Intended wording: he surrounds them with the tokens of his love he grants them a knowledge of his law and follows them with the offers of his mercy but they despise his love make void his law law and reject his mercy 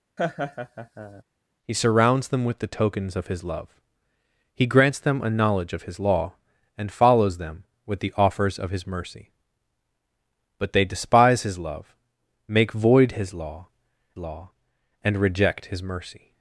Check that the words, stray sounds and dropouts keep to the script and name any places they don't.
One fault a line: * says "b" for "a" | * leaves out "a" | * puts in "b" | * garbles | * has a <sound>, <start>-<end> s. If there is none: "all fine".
* has a laugh, 0.2-1.2 s